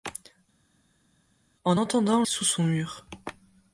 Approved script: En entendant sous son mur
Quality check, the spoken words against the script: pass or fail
pass